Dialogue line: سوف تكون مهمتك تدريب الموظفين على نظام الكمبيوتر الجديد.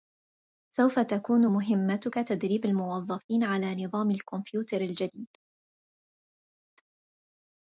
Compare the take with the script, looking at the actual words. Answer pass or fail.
pass